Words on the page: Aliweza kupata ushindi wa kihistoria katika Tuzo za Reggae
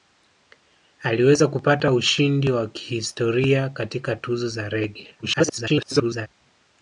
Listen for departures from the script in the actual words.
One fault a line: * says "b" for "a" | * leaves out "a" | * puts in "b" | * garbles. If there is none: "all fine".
* garbles